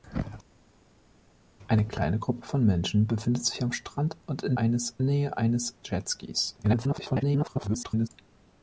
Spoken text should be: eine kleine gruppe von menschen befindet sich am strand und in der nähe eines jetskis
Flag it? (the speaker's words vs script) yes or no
yes